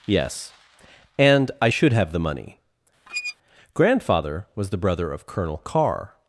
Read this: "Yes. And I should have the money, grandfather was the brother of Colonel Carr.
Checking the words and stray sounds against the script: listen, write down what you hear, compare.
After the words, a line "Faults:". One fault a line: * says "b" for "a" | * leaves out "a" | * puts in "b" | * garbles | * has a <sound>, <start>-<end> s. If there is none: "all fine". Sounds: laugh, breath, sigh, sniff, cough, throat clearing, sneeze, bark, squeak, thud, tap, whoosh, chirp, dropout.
"Yes. And I should have the money, grandfather was the brother of Colonel Carr.
Faults:
* has a squeak, 3.1-3.4 s